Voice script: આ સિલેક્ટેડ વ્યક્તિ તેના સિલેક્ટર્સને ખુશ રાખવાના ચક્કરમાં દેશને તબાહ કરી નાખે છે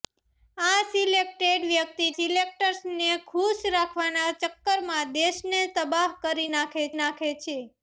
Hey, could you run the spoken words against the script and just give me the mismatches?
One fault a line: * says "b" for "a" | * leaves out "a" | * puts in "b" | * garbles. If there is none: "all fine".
* leaves out "તેના"
* puts in "નાખે"